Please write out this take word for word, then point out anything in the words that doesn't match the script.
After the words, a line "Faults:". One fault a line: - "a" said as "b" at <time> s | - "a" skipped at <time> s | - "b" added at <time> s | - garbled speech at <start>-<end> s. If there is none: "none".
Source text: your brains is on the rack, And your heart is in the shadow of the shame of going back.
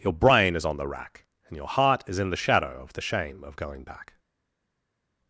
your brain is on the rack, And your heart is in the shadow of the shame of going back.
Faults:
- "brains" said as "brain" at 0.1 s